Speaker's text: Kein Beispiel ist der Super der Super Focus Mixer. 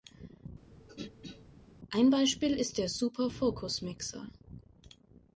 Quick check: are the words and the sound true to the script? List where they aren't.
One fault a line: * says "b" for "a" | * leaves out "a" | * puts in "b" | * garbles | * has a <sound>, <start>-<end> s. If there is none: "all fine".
* has a throat clearing, 0.7-1.5 s
* says "Ein" for "Kein"
* leaves out "der Super"